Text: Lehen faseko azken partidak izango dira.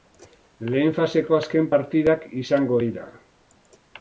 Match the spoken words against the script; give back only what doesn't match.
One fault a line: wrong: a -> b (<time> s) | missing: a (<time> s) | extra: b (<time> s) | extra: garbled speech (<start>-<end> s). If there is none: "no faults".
no faults